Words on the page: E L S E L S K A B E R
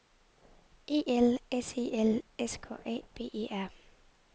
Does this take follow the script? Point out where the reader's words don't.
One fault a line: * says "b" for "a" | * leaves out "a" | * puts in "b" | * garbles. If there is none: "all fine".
all fine